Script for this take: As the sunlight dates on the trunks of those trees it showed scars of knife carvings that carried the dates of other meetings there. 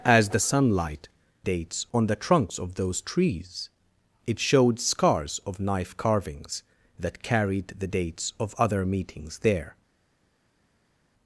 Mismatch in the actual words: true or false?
false